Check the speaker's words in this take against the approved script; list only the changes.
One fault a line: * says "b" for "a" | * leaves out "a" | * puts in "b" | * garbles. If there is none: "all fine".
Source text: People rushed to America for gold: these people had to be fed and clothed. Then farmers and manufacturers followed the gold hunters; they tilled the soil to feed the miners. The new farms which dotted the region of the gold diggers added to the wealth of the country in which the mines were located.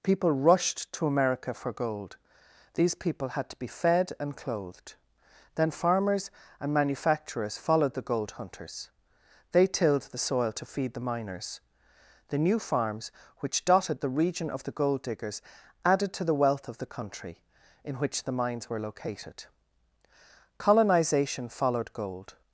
* puts in "Colonization followed gold"